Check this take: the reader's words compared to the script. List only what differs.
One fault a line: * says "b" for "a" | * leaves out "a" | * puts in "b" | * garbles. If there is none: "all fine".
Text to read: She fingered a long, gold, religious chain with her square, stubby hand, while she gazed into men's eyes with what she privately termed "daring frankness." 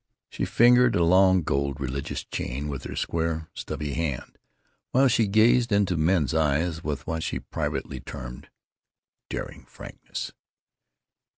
all fine